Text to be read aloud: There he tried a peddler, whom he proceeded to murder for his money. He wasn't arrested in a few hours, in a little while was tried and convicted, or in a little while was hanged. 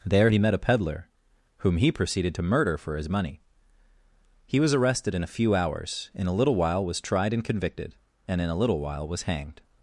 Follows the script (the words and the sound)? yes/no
no